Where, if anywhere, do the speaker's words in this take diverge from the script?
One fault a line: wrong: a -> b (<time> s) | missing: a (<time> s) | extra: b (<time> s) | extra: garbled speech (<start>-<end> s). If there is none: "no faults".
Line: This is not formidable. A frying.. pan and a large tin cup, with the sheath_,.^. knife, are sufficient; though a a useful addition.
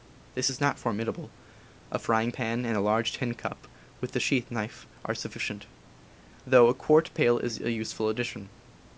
extra: quart pail is (6.8 s)